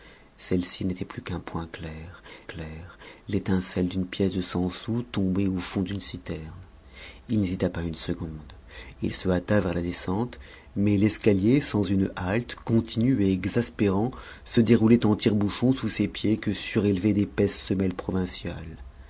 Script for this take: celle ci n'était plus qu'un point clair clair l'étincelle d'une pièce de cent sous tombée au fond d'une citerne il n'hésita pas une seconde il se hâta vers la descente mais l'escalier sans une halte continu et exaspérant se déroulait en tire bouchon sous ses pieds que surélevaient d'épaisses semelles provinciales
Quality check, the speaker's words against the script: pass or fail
pass